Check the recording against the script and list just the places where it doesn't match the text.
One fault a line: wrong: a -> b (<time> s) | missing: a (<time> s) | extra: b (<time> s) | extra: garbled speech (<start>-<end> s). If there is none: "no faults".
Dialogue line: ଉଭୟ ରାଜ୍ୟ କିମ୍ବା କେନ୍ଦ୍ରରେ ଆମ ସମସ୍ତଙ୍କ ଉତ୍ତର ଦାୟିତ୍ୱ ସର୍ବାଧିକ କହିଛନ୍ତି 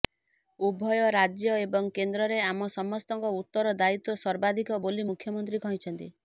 wrong: କିମ୍ବା -> ଏବଂ (1.6 s)
extra: ବୋଲି ମୁଖ୍ୟମନ୍ତ୍ରୀ (4.9 s)